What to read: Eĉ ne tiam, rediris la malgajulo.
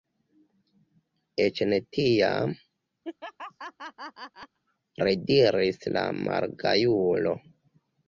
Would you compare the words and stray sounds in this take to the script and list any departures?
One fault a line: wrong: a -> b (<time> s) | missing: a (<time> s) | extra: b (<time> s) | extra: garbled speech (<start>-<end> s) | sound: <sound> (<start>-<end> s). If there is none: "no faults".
sound: laugh (3.0-4.6 s)